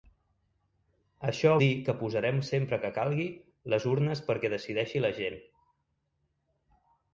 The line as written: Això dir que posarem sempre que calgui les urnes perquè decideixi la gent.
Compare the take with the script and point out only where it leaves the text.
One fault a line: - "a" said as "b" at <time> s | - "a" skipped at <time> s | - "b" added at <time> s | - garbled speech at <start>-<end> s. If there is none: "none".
none